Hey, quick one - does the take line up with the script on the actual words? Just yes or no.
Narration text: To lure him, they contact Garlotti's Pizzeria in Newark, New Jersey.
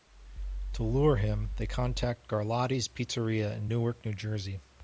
yes